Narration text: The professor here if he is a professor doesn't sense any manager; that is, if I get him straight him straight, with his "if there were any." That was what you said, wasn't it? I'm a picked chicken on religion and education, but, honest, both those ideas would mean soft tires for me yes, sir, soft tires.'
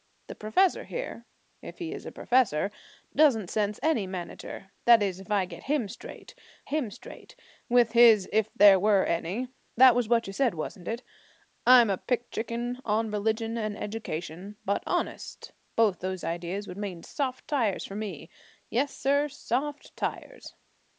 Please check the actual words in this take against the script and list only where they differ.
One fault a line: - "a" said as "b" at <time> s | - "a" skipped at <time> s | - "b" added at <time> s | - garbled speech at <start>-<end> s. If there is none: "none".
none